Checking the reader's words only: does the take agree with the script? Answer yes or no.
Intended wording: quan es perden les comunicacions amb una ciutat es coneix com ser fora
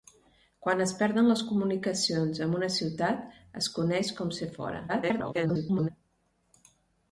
no